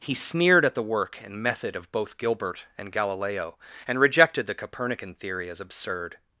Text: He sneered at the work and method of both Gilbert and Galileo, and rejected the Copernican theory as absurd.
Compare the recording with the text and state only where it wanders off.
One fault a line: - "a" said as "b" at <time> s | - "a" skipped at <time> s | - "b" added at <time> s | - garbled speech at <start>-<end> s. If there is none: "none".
none